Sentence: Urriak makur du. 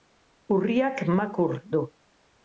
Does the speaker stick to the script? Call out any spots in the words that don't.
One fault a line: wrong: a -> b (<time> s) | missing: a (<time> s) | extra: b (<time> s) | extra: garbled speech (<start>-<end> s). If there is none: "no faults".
no faults